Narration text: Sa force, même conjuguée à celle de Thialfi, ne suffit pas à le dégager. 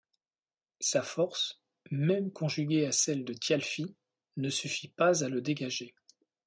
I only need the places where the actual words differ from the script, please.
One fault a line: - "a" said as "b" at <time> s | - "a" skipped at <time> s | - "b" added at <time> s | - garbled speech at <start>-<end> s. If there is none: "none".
none